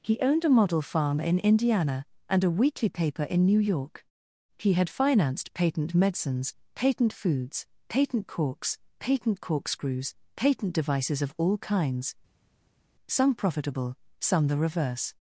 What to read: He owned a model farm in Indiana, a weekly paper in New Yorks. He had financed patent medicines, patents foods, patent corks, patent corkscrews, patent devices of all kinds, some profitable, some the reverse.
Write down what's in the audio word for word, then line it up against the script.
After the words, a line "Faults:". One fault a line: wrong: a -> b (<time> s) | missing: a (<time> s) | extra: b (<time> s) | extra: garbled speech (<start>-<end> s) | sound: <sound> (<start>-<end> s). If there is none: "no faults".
He owned a model farm in Indiana, and a weekly paper in New York. He had financed patent medicines, patent foods, patent corks, patent corkscrews, patent devices of all kinds, some profitable, some the reverse.
Faults:
extra: and (2.3 s)
wrong: Yorks -> York (3.6 s)
wrong: patents -> patent (6.7 s)